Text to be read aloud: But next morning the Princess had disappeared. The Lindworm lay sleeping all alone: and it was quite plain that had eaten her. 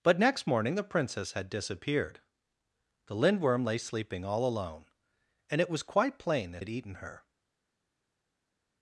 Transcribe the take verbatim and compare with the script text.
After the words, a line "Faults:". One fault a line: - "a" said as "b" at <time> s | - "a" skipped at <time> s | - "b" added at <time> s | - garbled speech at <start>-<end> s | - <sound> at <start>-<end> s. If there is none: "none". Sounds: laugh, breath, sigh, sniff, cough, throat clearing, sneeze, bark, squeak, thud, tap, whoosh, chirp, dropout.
But next morning the Princess had disappeared. The Lindworm lay sleeping all alone: and it was quite plain that had eaten her.
Faults:
none